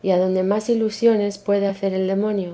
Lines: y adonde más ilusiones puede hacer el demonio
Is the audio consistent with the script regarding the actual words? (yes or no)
yes